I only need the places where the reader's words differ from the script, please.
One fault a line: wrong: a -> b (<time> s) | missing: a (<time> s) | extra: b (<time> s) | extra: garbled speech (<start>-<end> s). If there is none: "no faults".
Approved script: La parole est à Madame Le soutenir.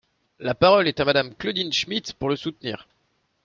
extra: Claudine Schmid pour (1.4 s)